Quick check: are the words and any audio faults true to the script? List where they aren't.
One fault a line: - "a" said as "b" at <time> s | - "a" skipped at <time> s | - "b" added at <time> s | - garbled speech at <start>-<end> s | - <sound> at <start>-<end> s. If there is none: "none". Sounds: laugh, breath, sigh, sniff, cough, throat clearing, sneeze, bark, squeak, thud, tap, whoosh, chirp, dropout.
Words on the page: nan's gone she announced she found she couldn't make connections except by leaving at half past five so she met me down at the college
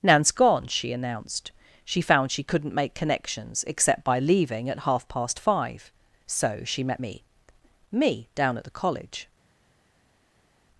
- "me" added at 7.9 s